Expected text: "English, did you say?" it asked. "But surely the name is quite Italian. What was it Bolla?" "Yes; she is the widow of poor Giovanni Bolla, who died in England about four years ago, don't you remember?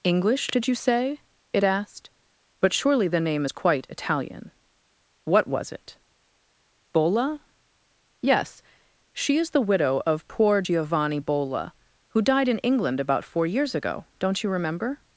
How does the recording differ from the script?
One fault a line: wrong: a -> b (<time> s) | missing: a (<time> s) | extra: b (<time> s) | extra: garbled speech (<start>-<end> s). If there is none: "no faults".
no faults